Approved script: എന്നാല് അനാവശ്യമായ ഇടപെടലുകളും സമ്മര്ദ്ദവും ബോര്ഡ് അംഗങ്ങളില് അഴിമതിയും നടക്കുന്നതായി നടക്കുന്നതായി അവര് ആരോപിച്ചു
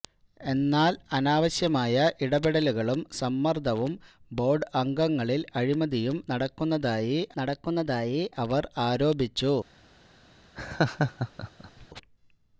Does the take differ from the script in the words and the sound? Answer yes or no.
yes